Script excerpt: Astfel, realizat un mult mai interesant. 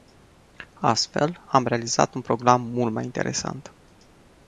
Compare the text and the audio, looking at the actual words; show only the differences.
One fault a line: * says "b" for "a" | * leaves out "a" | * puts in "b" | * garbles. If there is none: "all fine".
* puts in "am"
* puts in "program"